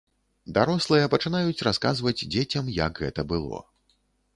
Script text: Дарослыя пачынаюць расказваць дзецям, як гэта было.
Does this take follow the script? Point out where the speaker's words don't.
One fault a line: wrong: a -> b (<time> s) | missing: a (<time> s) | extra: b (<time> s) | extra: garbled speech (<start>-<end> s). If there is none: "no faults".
no faults